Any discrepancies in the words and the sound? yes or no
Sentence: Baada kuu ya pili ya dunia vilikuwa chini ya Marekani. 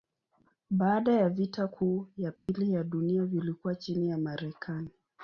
yes